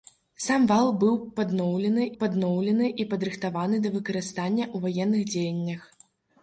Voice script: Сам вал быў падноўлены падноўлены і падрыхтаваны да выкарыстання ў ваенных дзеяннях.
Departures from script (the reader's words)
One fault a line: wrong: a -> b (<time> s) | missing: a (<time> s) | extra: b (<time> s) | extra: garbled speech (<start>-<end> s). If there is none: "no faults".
no faults